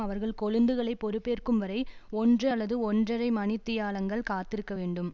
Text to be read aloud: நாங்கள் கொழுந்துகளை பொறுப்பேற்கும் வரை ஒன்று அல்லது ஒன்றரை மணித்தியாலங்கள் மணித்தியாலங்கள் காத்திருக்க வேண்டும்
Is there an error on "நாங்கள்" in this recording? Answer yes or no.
yes